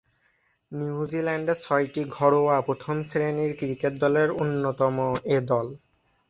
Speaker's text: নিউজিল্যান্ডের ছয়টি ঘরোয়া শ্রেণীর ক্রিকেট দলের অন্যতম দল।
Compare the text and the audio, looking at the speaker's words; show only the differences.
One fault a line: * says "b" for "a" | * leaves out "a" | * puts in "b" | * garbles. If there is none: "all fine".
* puts in "প্রথম"
* puts in "এ"